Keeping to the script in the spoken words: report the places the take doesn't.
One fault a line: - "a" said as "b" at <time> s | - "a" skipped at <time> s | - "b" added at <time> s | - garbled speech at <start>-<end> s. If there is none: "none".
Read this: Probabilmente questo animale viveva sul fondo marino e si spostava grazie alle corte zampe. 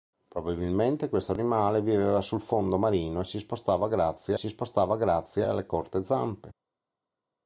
- "si spostava grazie" added at 4.3 s